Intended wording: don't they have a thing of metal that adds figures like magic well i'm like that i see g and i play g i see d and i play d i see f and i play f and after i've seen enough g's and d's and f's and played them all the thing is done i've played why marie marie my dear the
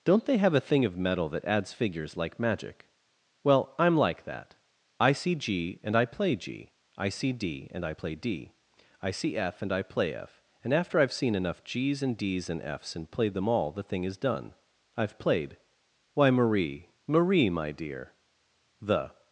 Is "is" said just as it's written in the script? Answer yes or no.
yes